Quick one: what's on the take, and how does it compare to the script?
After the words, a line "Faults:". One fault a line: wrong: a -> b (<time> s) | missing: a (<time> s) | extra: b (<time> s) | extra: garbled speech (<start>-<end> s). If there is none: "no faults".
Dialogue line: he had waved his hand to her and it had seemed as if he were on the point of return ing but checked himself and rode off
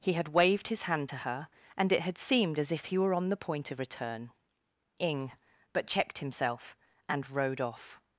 he had waved his hand to her and it had seemed as if he were on the point of return ing but checked himself and rode off
Faults:
no faults